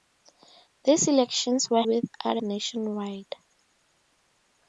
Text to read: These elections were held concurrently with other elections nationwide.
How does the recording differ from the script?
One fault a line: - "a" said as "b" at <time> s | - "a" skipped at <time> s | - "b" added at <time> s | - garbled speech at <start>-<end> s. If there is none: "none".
- "held concurrently" skipped at 1.8 s
- "elections" skipped at 2.4 s